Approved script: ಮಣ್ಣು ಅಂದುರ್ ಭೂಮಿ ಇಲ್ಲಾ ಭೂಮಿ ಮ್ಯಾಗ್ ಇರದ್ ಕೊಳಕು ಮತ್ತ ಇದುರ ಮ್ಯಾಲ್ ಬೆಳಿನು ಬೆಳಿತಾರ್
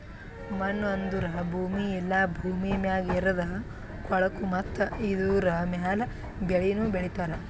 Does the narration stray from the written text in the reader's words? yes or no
no